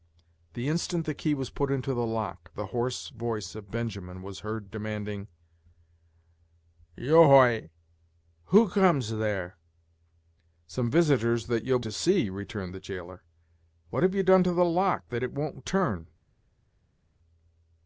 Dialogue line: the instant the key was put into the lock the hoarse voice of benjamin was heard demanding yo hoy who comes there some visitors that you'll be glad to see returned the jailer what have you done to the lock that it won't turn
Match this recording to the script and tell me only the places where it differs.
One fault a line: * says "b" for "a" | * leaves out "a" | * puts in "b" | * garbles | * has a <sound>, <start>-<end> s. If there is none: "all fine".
* leaves out "be glad"